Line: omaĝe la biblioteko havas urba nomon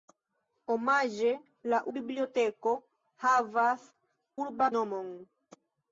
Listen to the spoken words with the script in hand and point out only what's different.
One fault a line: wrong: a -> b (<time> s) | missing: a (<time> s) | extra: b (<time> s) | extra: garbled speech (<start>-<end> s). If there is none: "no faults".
no faults